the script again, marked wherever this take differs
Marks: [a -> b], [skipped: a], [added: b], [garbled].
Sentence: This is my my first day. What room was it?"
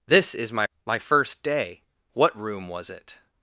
This is my my first day. What room was it?"